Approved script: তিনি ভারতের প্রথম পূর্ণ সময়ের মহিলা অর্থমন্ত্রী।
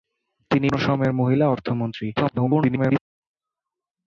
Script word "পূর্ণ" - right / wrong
wrong